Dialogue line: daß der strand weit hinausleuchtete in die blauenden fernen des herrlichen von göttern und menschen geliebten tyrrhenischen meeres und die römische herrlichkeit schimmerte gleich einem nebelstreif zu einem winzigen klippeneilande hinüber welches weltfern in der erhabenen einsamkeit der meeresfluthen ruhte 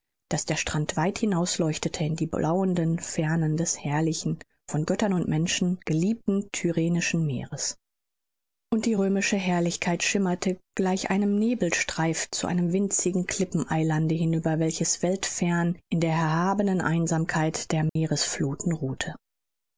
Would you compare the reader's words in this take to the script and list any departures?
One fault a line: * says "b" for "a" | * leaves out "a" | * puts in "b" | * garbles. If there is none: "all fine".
all fine